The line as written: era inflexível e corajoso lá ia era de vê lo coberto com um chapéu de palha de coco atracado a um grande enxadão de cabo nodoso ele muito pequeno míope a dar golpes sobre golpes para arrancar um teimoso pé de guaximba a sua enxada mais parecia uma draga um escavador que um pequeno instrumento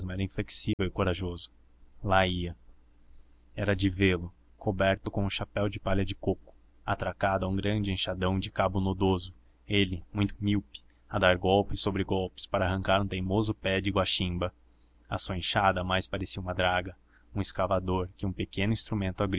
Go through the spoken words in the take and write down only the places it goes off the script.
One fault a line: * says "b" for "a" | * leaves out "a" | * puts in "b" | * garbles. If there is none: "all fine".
* leaves out "pequeno"